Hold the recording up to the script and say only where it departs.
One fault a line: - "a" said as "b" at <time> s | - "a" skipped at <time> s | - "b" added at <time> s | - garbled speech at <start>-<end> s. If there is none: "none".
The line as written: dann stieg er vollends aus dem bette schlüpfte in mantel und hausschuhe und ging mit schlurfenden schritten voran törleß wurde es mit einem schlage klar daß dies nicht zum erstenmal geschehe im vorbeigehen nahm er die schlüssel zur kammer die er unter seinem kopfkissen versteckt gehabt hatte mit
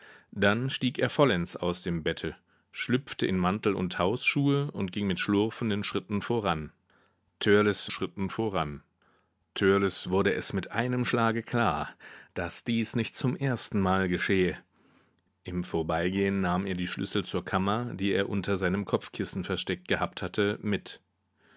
- "schritten voran törleß" added at 7.9 s